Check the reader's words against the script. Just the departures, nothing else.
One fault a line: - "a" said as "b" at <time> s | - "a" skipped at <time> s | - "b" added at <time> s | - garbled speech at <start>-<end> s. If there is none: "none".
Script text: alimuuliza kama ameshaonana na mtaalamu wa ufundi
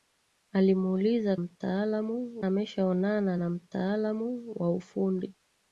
- "kama" said as "mtaalamu" at 1.4 s